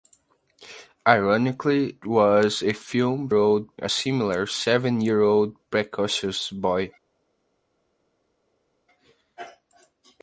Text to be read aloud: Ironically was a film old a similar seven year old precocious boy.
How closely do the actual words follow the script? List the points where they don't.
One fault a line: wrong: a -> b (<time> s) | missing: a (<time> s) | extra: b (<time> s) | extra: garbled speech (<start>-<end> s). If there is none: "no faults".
no faults